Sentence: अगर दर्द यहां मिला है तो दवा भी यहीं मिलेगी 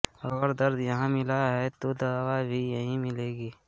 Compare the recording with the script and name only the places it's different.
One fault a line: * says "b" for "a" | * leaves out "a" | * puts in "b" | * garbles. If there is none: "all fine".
all fine